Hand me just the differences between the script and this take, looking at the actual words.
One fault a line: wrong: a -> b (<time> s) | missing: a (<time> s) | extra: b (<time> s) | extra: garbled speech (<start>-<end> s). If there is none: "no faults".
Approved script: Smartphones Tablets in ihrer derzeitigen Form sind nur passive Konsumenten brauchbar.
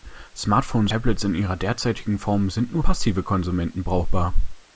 no faults